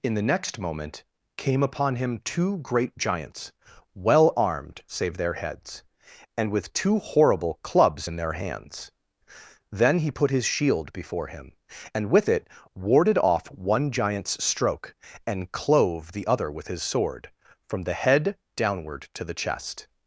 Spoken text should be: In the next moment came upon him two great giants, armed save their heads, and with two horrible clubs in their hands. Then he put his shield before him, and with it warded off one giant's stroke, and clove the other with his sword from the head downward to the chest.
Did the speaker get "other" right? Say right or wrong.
right